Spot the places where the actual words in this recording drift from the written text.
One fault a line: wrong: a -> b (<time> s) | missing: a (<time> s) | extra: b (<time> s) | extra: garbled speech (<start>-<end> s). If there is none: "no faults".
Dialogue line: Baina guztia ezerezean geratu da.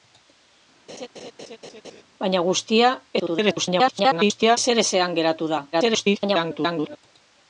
extra: garbled speech (3.2-4.6 s)
extra: garbled speech (5.7-7.0 s)